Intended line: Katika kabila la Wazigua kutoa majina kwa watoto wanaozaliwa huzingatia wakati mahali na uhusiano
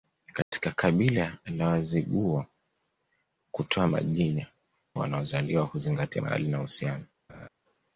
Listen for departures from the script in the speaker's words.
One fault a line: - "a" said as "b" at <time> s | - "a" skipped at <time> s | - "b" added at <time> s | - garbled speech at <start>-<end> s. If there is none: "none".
- "kwa watoto" skipped at 4.5 s
- "wakati" skipped at 6.2 s